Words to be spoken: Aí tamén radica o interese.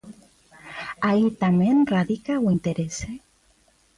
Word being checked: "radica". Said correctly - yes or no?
yes